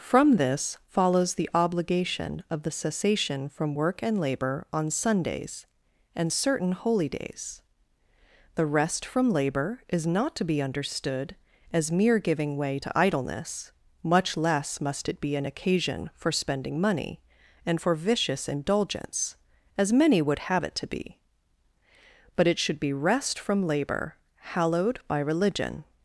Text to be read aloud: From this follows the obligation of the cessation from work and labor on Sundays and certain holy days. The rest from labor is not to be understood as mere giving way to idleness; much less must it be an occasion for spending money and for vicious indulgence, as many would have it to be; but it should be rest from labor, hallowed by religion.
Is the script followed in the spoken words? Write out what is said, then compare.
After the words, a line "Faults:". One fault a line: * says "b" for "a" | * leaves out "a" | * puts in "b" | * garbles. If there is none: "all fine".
From this follows the obligation of the cessation from work and labor on Sundays and certain holy days. The rest from labor is not to be understood as mere giving way to idleness; much less must it be an occasion for spending money and for vicious indulgence, as many would have it to be; but it should be rest from labor, hallowed by religion.
Faults:
all fine